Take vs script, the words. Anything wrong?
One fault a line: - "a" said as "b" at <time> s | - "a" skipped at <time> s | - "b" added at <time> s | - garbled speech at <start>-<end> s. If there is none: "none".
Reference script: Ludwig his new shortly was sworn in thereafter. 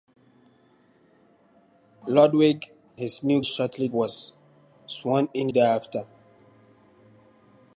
none